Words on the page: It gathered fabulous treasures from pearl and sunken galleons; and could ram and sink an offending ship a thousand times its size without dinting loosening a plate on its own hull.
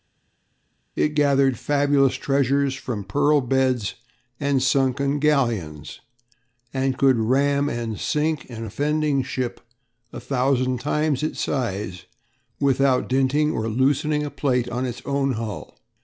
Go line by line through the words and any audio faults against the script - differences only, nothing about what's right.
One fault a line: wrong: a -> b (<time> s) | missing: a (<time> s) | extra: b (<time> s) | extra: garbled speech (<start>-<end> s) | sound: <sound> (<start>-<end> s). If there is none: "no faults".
extra: beds (3.4 s)
extra: or (13.5 s)